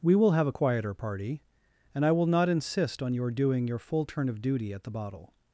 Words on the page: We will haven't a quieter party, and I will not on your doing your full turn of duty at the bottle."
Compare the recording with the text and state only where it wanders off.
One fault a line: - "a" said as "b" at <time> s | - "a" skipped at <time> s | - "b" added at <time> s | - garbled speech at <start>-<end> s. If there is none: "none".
- "haven't" said as "have" at 0.3 s
- "insist" added at 2.5 s